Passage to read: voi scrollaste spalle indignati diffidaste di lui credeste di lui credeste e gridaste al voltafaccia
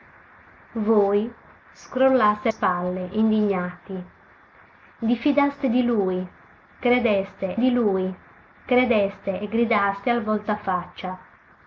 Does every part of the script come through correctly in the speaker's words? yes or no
yes